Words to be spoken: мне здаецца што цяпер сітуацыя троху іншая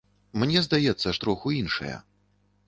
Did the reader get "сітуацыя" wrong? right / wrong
wrong